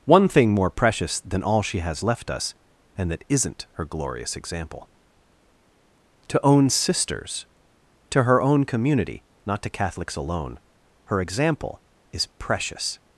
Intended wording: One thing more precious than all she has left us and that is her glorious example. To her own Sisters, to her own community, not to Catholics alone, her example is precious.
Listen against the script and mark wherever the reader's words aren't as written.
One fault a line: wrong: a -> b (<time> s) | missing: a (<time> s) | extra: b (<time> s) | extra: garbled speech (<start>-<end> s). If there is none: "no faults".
wrong: is -> isn't (3.3 s)
missing: her (6.4 s)